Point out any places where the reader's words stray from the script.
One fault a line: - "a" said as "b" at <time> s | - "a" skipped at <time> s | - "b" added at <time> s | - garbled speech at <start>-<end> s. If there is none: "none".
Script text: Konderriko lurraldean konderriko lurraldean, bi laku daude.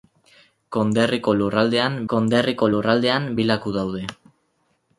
none